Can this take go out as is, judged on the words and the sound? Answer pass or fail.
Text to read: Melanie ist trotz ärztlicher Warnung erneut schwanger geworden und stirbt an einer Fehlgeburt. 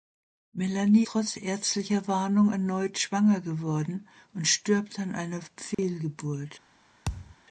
fail